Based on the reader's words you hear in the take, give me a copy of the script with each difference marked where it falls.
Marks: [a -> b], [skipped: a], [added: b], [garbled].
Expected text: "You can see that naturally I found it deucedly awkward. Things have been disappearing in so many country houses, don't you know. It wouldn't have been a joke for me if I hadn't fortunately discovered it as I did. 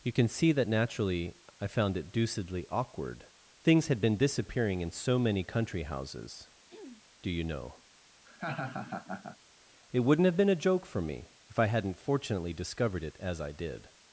"You can see that naturally I found it deucedly awkward. Things [have -> had] been disappearing in so many country houses, [don't -> do] you know. It wouldn't have been a joke for me if I hadn't fortunately discovered it as I did.